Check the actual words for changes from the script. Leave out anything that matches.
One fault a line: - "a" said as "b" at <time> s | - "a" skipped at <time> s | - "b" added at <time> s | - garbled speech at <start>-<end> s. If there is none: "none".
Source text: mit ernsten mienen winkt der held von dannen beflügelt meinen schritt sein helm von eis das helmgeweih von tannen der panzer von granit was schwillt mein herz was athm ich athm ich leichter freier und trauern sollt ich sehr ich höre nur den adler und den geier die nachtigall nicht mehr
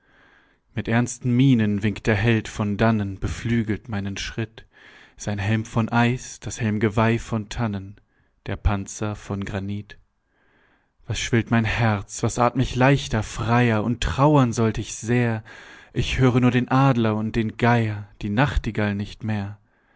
- "athm ich" skipped at 12.8 s